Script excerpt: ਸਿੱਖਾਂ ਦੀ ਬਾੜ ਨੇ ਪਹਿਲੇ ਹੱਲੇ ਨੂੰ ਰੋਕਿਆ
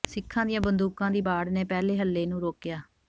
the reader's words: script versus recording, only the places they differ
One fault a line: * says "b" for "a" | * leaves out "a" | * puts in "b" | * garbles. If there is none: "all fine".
* puts in "ਦੀਆਂ ਬੰਦੂਕਾਂ"